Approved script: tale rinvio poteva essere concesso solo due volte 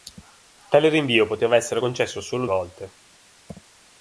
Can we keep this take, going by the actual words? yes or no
no